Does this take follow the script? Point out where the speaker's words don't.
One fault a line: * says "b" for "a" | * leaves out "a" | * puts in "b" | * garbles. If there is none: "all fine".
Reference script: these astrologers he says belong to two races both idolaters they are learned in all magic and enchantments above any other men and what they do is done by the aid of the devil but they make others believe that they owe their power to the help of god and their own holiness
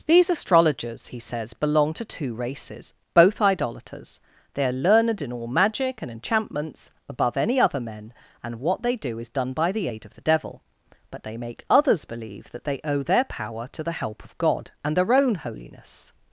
all fine